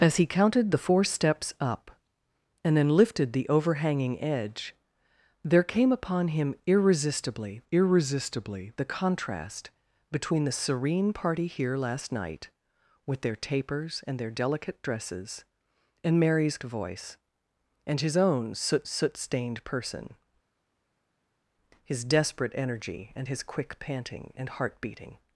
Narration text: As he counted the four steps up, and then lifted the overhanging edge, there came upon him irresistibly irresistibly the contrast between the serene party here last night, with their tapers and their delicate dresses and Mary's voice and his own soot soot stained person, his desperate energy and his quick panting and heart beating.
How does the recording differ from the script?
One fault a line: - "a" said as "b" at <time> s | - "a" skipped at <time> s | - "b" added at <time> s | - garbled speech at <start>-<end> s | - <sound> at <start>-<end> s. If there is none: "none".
none